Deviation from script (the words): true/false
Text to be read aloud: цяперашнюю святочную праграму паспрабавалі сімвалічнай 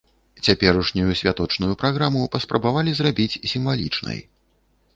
true